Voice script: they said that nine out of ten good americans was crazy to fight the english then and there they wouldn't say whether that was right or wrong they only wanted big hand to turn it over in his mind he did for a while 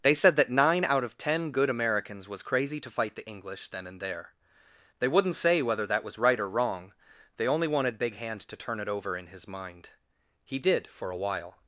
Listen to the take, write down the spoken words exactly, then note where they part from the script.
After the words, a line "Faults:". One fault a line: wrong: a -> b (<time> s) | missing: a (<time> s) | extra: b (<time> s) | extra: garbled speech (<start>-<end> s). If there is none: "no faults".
they said that nine out of ten good americans was crazy to fight the english then and there they wouldn't say whether that was right or wrong they only wanted big hand to turn it over in his mind he did for a while
Faults:
no faults